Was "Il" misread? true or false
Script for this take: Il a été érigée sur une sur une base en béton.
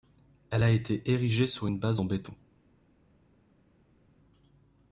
true